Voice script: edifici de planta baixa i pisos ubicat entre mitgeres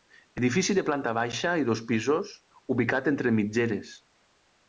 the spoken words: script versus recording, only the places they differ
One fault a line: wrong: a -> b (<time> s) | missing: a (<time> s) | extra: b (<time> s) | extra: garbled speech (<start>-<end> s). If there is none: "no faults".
extra: dos (1.7 s)